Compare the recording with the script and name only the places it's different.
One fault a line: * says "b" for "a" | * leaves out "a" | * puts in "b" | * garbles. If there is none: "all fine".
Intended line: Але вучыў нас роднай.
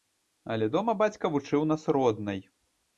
* puts in "дома бацька"